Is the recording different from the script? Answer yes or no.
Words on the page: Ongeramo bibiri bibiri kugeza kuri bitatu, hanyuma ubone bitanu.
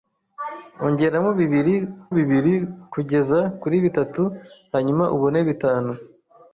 no